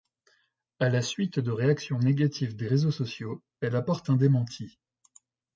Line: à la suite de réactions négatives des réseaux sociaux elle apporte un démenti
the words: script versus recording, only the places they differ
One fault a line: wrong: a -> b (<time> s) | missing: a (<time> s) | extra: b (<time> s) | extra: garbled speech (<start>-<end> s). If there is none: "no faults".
no faults